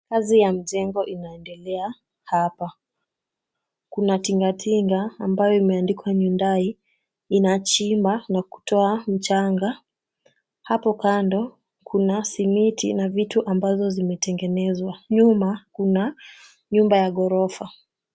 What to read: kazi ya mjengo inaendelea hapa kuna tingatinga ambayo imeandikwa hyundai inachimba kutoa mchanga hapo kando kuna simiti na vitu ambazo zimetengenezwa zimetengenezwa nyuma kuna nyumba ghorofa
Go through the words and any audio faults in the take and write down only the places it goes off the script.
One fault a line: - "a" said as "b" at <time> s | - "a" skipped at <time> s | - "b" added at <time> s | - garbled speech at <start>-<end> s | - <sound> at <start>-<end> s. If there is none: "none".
- "na" added at 8.3 s
- "zimetengenezwa" skipped at 15.0 s
- "ya" added at 17.0 s